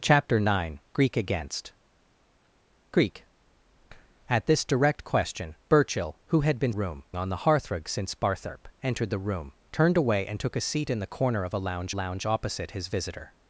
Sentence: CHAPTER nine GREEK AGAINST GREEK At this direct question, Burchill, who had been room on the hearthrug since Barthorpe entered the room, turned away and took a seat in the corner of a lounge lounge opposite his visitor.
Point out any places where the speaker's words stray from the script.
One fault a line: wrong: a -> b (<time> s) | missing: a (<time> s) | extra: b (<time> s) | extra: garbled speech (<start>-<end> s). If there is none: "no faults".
no faults